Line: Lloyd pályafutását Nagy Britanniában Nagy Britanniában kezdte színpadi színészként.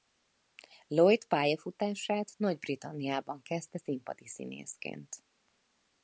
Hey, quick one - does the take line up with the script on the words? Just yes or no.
no